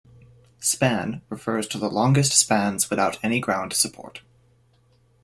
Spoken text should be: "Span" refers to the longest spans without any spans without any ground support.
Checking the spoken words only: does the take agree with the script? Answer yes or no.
no